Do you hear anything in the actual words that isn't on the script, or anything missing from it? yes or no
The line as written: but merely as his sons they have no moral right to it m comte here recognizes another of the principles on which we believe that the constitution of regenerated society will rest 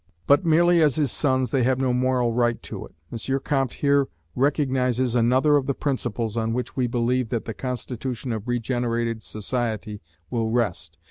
no